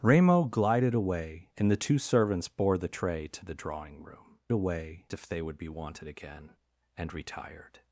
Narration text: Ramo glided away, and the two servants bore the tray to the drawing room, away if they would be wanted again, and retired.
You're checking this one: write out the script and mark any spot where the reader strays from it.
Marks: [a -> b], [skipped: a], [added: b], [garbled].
Ramo glided away, and the two servants bore the tray to the drawing room, away if they would be wanted again, and retired.